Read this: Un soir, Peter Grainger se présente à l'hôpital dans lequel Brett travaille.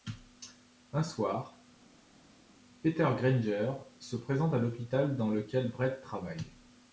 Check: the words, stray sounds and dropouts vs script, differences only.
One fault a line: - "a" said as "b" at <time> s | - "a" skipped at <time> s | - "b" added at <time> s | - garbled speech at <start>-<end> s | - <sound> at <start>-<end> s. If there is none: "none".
none